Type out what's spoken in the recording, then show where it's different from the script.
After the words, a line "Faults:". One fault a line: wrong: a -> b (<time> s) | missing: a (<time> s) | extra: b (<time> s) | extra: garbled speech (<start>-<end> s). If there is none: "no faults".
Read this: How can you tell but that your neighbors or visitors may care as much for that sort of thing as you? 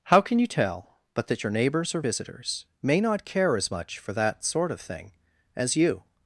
How can you tell but that your neighbors or visitors may not care as much for that sort of thing as you?
Faults:
extra: not (3.0 s)